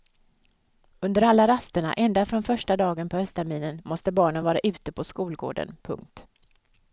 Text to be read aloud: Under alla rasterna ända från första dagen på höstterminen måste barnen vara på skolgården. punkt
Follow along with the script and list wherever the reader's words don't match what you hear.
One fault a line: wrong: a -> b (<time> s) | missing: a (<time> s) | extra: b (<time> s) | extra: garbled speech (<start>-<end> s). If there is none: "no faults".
extra: ute (4.6 s)